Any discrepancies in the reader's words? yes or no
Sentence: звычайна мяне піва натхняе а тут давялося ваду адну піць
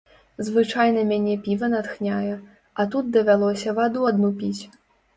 no